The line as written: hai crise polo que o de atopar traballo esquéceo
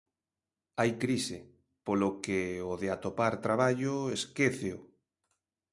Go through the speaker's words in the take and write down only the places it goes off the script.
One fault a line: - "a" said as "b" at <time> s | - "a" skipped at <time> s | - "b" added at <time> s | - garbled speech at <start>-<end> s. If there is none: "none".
none